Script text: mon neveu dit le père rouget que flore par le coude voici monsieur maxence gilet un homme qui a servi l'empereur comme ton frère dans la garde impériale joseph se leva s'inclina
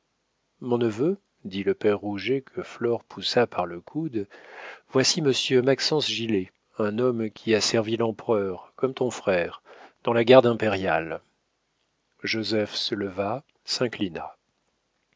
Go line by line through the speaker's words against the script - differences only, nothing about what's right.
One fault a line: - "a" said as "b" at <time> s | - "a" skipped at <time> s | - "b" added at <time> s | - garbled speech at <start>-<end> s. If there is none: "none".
- "poussa" added at 3.0 s